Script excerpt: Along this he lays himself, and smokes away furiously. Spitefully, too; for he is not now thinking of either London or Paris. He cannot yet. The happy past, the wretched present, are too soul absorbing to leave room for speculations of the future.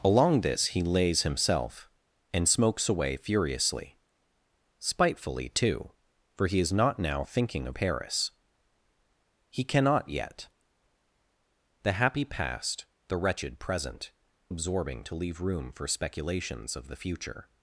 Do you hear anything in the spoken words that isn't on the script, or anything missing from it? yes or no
yes